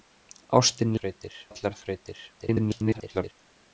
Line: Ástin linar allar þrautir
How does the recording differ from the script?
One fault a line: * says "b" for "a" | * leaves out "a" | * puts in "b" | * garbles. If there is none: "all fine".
* says "þrautir" for "linar"
* garbles